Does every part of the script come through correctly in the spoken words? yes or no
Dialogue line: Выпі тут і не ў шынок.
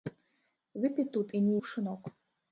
yes